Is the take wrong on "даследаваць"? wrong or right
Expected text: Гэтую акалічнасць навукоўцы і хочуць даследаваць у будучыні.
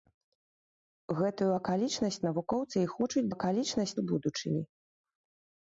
wrong